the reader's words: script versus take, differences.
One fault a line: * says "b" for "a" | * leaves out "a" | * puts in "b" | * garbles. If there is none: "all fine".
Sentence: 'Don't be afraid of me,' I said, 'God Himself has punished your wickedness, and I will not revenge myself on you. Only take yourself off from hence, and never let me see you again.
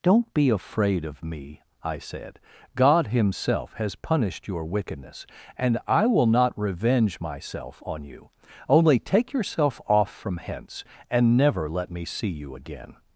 all fine